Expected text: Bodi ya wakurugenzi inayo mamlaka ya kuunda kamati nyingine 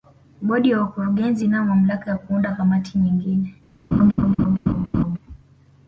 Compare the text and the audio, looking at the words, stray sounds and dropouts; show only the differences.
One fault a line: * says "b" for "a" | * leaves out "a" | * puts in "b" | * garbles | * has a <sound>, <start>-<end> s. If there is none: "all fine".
* has a laugh, 3.9-5.2 s